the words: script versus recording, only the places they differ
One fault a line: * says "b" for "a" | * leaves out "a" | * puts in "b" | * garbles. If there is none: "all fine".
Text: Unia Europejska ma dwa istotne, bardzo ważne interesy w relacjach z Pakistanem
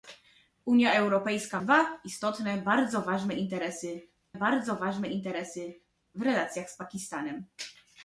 * leaves out "ma"
* puts in "bardzo ważne interesy"